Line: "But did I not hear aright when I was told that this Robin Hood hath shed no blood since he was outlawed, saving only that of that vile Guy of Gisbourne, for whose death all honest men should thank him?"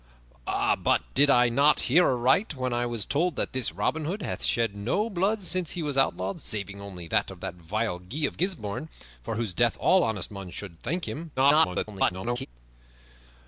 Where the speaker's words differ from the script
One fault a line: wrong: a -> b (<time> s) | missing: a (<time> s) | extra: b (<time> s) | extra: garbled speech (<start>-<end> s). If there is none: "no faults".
extra: garbled speech (11.4-12.5 s)